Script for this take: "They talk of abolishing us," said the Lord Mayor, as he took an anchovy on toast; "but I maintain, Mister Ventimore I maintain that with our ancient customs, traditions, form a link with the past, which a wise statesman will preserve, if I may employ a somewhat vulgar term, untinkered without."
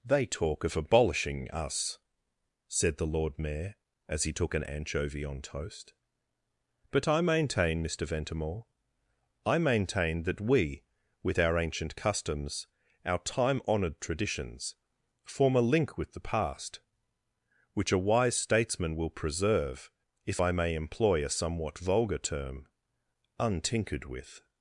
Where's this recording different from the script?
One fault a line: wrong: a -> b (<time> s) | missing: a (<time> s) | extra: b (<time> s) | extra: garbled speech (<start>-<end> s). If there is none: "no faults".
extra: we (10.4 s)
extra: our time honoured (13.0 s)
wrong: without -> with (24.0 s)